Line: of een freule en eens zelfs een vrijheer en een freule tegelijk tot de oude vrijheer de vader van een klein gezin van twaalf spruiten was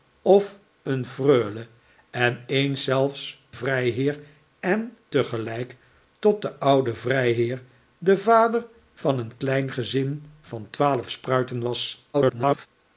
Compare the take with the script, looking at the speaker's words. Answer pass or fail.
fail